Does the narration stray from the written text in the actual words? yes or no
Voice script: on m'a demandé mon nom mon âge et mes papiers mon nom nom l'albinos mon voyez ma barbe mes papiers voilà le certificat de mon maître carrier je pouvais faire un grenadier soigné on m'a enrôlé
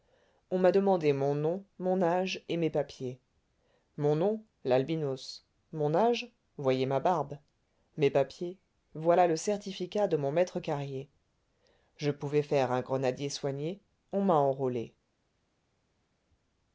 yes